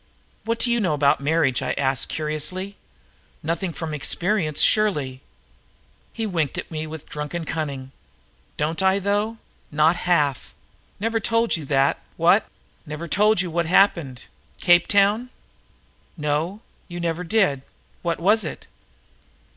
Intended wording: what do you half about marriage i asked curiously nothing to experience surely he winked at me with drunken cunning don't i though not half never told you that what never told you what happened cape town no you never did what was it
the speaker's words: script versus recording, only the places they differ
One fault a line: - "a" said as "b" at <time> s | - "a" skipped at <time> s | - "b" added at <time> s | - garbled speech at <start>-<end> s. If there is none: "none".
- "half" said as "know" at 0.8 s
- "to" said as "from" at 3.7 s